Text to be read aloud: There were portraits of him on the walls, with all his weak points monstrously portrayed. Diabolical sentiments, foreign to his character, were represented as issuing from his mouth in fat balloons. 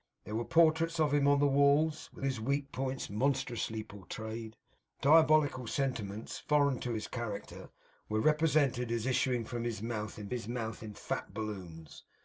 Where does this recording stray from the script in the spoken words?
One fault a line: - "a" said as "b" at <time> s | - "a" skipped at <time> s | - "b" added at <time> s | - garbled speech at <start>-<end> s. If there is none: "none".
- "all" skipped at 2.2 s
- "his mouth in" added at 10.3 s